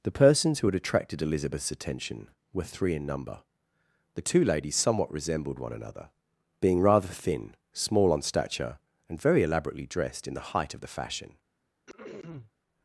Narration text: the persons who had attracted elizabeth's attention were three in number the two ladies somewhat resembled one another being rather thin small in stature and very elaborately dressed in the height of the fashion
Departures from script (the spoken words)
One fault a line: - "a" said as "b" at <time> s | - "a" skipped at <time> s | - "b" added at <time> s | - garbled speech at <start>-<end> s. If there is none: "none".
- "in" said as "on" at 8.1 s